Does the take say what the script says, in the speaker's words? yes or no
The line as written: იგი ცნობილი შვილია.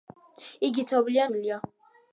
yes